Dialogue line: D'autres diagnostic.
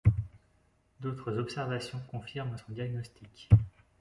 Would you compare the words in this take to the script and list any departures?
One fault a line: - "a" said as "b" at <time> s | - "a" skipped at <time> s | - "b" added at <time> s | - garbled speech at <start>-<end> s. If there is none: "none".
- "observations confirment son" added at 1.4 s